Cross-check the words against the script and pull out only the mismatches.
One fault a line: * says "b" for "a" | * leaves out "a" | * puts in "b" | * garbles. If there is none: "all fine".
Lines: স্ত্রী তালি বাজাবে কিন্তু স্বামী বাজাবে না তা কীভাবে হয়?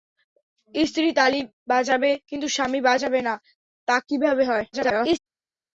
* garbles